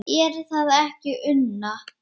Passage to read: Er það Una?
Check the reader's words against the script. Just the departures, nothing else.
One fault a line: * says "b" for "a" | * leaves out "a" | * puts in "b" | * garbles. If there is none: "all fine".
* puts in "ekki"